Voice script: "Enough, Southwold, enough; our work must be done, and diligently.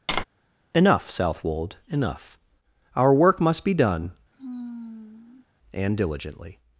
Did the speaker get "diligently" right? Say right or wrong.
right